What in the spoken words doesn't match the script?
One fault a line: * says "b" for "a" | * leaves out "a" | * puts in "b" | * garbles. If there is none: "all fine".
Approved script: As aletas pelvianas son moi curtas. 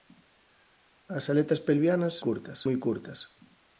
* says "curtas" for "son"